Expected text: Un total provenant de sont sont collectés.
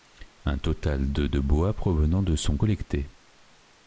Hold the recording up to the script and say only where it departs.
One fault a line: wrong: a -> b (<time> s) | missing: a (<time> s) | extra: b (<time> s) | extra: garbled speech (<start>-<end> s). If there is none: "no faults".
extra: de de bois (1.1 s)
missing: sont (2.6 s)